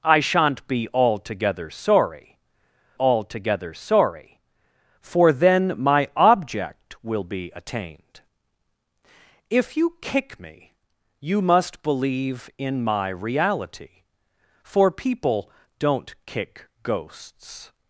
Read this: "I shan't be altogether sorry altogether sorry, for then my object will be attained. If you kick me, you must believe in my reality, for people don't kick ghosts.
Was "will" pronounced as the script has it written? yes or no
yes